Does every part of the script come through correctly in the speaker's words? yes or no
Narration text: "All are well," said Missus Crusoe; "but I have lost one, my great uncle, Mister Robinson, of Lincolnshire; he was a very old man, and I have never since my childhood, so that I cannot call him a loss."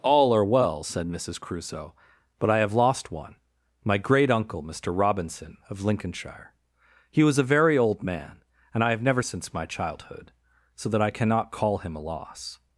yes